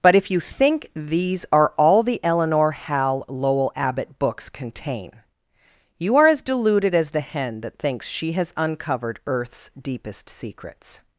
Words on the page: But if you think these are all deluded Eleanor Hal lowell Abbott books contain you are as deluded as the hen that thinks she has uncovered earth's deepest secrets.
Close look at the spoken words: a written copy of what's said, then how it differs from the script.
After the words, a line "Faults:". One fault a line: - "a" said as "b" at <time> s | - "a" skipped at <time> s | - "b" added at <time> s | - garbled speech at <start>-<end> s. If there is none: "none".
But if you think these are all the Eleanor Hal lowell Abbott books contain you are as deluded as the hen that thinks she has uncovered earth's deepest secrets.
Faults:
- "deluded" said as "the" at 2.0 s